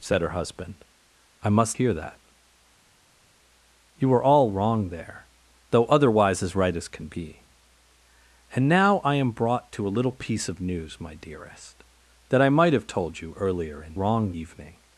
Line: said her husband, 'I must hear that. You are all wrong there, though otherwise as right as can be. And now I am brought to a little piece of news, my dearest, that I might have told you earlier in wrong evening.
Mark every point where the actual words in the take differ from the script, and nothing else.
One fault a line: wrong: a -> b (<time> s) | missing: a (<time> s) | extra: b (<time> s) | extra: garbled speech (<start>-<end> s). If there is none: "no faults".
no faults